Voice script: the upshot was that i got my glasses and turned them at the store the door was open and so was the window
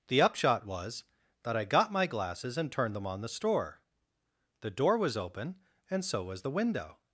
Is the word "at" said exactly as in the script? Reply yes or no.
no